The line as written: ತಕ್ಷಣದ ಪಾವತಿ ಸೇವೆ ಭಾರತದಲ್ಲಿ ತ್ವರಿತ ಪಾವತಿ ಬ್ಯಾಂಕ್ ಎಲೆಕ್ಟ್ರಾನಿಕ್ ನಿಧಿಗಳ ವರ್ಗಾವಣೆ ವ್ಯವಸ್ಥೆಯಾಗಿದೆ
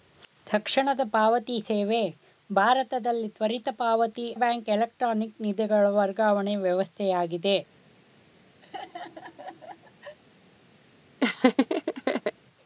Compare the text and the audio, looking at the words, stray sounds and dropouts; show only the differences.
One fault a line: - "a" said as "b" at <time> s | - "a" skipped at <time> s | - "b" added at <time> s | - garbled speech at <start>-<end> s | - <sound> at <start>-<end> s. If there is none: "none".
- laugh at 8.6-10.2 s
- laugh at 11.2-12.3 s